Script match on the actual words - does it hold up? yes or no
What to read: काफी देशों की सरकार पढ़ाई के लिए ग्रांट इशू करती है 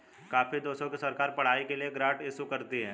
yes